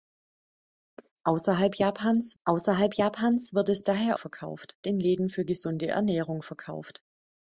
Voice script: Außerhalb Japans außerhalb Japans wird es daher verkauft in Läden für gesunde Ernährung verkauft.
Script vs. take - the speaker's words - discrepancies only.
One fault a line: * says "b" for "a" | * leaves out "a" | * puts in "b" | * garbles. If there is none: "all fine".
all fine